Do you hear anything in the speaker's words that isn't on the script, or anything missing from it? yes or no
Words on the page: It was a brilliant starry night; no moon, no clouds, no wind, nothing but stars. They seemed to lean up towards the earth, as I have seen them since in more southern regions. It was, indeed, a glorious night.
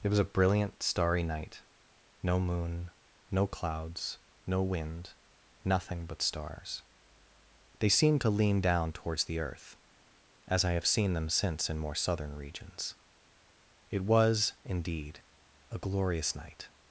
yes